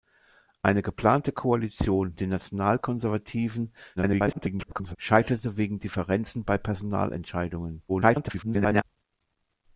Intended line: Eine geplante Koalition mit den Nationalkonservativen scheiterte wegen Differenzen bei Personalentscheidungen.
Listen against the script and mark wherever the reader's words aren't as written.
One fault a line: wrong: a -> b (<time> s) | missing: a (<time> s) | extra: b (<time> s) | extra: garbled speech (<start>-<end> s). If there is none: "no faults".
missing: mit (2.1 s)
extra: garbled speech (4.0-5.0 s)
extra: garbled speech (7.9-8.8 s)